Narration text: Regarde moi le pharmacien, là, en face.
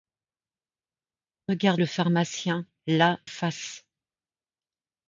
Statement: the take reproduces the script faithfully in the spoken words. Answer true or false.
false